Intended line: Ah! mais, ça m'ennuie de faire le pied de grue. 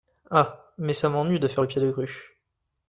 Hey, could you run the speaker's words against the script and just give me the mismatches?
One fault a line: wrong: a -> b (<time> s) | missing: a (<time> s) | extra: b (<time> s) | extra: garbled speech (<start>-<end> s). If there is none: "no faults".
no faults